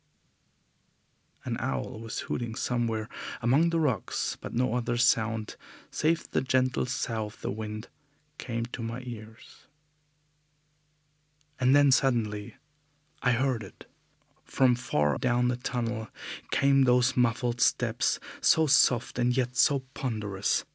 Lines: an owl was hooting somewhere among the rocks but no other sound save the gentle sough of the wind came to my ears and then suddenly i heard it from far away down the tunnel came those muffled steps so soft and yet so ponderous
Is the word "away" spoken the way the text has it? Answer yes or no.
no